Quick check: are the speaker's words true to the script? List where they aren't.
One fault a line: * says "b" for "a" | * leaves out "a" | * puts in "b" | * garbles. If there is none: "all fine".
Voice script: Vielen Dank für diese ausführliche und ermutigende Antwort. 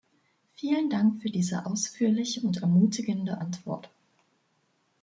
all fine